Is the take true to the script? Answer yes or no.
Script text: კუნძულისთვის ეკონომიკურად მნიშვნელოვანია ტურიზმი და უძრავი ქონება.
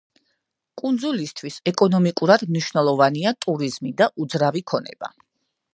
yes